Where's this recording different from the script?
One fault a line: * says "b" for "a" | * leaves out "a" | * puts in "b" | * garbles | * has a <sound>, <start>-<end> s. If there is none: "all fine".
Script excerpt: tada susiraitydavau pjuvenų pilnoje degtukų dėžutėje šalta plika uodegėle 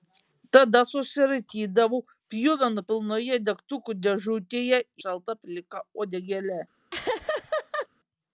* has a laugh, 6.9-7.9 s